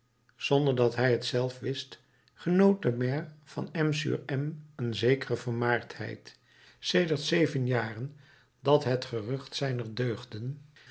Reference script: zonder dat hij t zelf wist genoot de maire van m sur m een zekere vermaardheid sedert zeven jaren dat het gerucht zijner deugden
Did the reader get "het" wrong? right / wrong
right